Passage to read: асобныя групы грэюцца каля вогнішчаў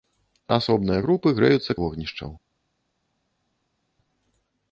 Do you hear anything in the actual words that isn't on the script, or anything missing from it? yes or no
yes